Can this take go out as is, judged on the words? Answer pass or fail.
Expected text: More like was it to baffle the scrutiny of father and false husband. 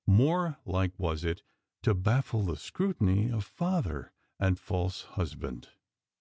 pass